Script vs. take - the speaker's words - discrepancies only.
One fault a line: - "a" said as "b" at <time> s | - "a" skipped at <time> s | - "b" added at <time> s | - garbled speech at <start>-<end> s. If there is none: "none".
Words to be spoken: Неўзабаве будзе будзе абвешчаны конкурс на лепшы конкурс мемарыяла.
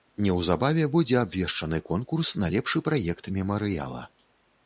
- "будзе" skipped at 1.2 s
- "конкурс" said as "праект" at 2.9 s